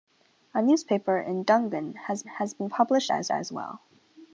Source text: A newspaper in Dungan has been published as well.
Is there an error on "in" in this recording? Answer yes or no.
no